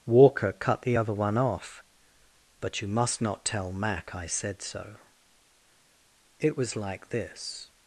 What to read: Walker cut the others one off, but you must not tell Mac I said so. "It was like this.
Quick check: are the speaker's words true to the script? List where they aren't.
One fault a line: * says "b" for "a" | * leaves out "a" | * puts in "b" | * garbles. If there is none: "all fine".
* says "other" for "others"